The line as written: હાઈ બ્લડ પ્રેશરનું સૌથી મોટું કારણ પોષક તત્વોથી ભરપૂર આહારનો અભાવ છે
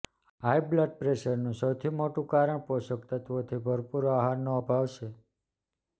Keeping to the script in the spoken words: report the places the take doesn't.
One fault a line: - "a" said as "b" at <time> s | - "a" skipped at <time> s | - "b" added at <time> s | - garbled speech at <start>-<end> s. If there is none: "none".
none